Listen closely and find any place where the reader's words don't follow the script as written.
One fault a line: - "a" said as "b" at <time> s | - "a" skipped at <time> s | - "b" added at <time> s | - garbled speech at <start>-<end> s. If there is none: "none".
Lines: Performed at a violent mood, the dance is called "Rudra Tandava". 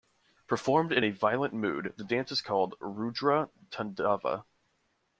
- "at" said as "in" at 0.9 s